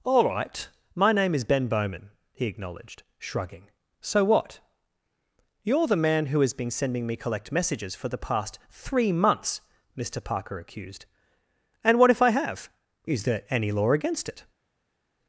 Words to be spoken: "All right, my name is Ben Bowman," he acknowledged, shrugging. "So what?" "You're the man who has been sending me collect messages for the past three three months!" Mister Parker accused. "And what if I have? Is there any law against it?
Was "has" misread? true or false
false